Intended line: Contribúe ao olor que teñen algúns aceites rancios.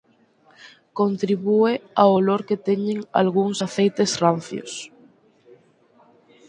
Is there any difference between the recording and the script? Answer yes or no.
no